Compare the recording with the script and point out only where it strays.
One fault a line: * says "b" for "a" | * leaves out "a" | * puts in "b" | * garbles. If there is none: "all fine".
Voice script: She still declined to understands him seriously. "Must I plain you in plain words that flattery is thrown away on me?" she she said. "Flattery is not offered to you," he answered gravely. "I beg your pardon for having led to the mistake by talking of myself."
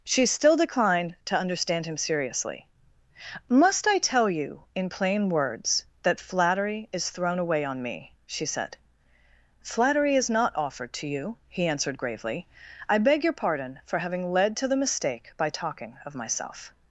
* says "understand" for "understands"
* says "tell" for "plain"
* leaves out "she"